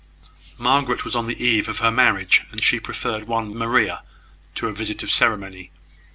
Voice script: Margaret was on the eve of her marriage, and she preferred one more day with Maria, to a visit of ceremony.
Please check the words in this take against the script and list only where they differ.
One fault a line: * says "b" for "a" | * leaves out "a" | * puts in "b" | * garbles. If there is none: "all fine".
* leaves out "more day with"